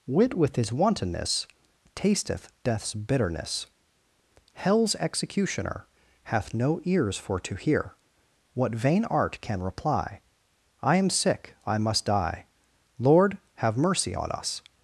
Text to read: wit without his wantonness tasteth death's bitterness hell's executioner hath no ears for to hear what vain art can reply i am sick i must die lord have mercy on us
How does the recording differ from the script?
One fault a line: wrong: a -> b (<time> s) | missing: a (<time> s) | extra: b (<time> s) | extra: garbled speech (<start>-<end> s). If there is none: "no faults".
wrong: without -> with (0.3 s)